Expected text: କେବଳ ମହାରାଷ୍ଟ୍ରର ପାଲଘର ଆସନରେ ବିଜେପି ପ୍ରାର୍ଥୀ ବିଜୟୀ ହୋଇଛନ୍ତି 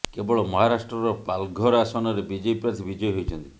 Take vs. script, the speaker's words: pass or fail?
pass